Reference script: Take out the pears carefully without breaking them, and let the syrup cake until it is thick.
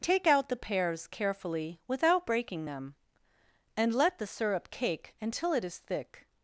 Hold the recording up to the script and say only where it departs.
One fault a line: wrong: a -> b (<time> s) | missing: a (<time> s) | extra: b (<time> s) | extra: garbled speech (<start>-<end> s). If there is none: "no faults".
no faults